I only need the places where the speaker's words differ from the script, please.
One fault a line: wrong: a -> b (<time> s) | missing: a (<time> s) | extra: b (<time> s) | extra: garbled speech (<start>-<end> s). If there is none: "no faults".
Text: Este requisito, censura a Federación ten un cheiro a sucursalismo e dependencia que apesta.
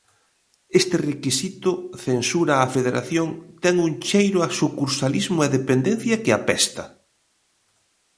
no faults